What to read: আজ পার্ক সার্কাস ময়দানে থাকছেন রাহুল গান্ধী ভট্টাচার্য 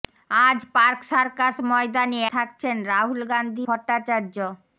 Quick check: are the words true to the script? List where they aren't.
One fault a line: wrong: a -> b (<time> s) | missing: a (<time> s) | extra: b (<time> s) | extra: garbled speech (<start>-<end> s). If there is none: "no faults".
no faults